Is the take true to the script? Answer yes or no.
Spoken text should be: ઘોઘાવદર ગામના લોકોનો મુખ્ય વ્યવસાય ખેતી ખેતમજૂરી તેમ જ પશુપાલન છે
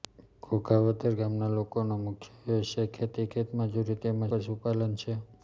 no